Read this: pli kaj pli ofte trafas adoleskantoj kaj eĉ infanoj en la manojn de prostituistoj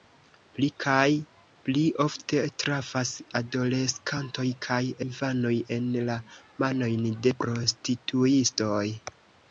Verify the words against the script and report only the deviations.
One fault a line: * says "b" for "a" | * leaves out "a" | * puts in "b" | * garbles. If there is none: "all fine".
* leaves out "eĉ"